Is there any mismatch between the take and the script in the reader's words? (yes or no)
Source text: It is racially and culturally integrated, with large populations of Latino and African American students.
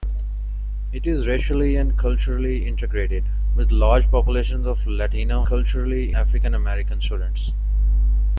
yes